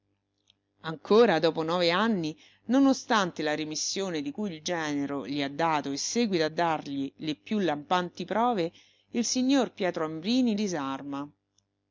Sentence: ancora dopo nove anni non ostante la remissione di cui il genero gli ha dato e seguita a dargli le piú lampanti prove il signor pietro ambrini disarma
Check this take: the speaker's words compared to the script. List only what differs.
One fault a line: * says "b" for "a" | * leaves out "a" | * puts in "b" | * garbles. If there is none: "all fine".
all fine